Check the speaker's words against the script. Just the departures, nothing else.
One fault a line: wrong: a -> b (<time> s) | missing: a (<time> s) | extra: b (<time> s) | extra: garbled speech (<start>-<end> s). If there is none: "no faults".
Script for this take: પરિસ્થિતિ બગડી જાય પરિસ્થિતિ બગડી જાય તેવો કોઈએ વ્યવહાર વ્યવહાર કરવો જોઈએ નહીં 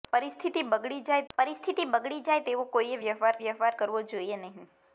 no faults